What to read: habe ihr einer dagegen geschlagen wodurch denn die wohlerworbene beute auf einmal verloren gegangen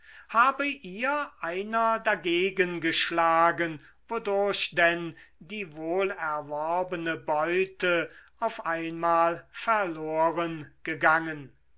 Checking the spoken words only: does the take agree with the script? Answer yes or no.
yes